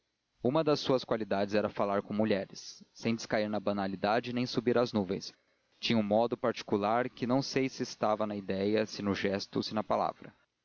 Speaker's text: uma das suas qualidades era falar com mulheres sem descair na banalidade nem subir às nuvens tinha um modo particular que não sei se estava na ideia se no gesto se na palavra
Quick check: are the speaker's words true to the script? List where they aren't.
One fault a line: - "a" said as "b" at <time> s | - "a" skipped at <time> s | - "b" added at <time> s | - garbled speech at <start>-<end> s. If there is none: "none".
none